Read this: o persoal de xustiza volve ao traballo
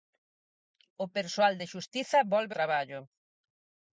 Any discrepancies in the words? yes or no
yes